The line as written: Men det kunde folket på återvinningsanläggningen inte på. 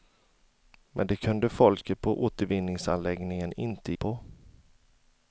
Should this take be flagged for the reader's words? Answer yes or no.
no